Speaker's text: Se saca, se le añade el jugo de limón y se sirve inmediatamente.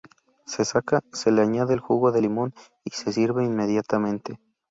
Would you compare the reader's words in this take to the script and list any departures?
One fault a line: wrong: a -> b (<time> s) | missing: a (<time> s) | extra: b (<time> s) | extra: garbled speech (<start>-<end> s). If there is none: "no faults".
no faults